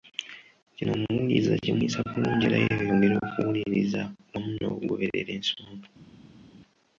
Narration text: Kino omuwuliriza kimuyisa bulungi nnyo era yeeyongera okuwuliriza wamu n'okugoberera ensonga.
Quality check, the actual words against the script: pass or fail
fail